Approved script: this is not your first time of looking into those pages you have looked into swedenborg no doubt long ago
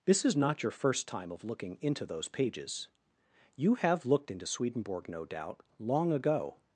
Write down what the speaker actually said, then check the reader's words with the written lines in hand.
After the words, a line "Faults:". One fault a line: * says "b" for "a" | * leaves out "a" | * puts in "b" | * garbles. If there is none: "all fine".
this is not your first time of looking into those pages you have looked into swedenborg no doubt long ago
Faults:
all fine